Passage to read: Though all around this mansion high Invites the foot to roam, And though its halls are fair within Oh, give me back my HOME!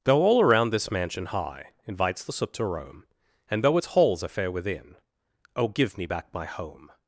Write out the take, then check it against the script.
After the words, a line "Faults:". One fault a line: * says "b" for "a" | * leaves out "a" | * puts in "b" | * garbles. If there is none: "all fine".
Though all around this mansion high Invites the soot to roam, And though its halls are fair within Oh, give me back my HOME!
Faults:
* says "soot" for "foot"